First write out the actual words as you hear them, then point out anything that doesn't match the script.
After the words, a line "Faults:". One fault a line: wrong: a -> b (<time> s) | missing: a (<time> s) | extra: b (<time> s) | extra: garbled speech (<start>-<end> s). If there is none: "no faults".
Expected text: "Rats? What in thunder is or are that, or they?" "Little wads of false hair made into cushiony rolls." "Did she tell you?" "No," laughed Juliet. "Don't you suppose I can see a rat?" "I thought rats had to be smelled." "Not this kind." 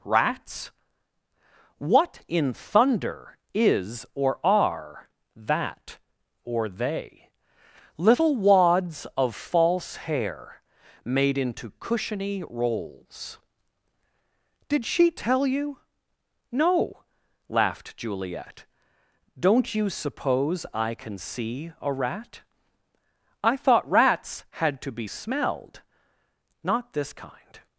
"Rats? What in thunder is or are that, or they?" "Little wads of false hair made into cushiony rolls." "Did she tell you?" "No," laughed Juliet. "Don't you suppose I can see a rat?" "I thought rats had to be smelled." "Not this kind."
Faults:
no faults